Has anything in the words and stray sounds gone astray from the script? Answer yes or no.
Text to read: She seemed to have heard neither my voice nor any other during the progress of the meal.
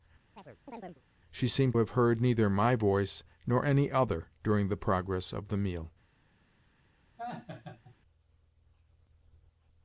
yes